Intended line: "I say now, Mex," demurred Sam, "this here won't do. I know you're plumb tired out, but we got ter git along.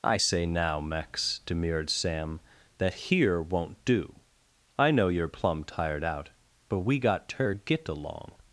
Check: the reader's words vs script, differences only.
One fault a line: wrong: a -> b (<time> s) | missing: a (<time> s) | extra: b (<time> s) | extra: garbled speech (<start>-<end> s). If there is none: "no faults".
wrong: this -> that (2.8 s)